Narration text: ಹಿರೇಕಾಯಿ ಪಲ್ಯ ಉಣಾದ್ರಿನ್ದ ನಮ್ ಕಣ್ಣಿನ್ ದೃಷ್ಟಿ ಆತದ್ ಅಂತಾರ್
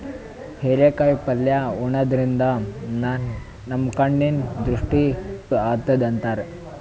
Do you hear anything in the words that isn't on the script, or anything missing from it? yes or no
no